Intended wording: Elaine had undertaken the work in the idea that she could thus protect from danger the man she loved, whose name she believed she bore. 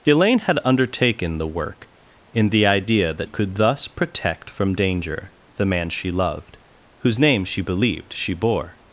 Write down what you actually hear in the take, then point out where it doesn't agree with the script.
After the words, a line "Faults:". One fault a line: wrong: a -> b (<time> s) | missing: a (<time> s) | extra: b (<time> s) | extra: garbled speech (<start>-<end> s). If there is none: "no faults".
Elaine had undertaken the work in the idea that could thus protect from danger the man she loved, whose name she believed she bore.
Faults:
missing: she (3.3 s)